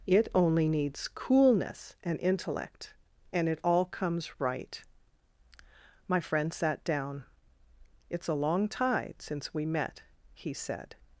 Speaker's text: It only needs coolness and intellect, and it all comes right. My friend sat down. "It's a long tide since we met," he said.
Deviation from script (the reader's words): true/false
false